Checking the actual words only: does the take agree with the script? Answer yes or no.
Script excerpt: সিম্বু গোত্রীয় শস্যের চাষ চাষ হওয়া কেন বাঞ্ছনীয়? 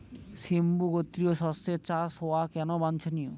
no